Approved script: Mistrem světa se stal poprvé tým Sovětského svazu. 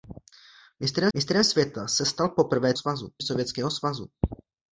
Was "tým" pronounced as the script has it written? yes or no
no